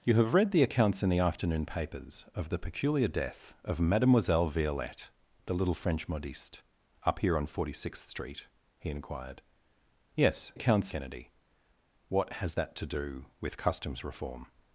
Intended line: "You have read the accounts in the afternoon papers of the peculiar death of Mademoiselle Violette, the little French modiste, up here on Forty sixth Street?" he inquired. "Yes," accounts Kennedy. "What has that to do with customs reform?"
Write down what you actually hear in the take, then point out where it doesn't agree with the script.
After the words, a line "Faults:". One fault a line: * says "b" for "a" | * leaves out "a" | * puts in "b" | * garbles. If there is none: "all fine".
"You have read the accounts in the afternoon papers of the peculiar death of Mademoiselle Violette, the little French modiste, up here on Forty sixth Street?" he inquired. "Yes," accounts Kennedy. "What has that to do with customs reform?"
Faults:
all fine